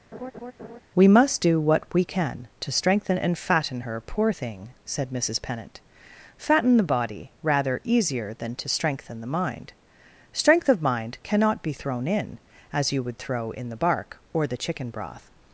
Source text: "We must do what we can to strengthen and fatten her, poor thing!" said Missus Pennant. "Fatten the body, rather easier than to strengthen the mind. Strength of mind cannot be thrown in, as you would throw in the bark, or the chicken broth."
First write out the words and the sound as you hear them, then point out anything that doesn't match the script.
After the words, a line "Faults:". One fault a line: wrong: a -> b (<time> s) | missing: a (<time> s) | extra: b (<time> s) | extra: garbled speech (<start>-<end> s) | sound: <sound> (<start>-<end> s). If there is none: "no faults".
"We must do what we can to strengthen and fatten her, poor thing!" said Missus Pennant. "Fatten the body, rather easier than to strengthen the mind. Strength of mind cannot be thrown in, as you would throw in the bark, or the chicken broth."
Faults:
sound: laugh (0.1-0.8 s)